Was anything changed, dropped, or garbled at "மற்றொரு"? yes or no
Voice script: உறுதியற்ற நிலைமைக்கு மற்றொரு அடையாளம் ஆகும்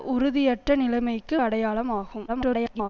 yes